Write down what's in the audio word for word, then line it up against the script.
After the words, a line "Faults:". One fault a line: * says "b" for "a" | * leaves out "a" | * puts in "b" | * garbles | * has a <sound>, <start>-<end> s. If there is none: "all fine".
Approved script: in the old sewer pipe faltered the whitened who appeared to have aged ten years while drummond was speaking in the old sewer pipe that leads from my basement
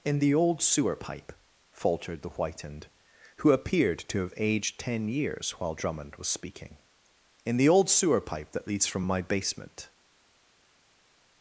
in the old sewer pipe faltered the whitened who appeared to have aged ten years while drummond was speaking in the old sewer pipe that leads from my basement
Faults:
all fine